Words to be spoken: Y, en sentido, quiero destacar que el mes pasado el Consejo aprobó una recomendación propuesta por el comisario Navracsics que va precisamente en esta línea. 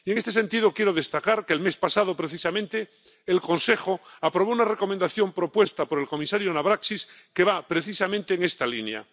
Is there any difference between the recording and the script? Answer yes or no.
yes